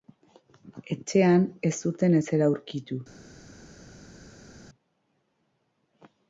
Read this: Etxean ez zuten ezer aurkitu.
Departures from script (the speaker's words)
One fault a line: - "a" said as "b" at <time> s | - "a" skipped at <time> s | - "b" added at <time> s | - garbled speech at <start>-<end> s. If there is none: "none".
none